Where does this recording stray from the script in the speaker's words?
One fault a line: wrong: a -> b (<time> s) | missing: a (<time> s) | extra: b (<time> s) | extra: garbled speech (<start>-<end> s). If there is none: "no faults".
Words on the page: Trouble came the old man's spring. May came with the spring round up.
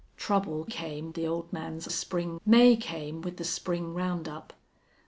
no faults